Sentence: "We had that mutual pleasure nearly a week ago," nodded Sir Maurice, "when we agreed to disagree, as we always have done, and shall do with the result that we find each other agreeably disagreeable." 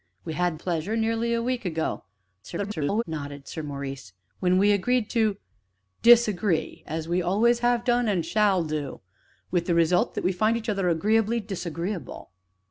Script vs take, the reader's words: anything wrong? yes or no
yes